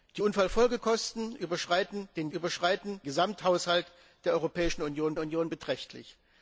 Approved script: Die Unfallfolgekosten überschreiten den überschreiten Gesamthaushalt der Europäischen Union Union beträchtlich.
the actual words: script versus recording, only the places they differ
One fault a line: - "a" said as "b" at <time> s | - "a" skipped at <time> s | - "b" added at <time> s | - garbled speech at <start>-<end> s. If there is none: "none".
none